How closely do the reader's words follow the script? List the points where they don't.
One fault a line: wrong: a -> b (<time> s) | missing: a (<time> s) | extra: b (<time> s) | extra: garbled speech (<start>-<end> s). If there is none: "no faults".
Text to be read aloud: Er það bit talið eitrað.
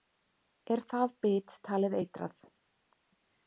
no faults